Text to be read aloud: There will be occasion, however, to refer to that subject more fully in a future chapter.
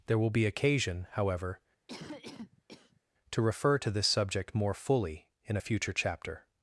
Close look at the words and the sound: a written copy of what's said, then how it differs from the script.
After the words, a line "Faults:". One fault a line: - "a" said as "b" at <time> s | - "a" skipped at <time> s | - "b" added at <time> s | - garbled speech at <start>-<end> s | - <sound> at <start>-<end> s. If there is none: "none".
There will be occasion, however, to refer to this subject more fully in a future chapter.
Faults:
- cough at 1.9-3.0 s
- "that" said as "this" at 3.9 s